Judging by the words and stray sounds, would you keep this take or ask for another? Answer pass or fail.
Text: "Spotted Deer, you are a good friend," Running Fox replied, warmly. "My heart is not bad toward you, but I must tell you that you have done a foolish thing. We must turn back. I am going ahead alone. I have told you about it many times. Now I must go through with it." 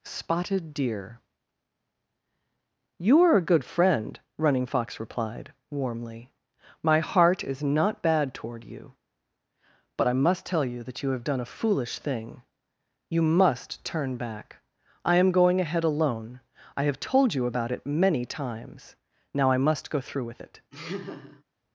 fail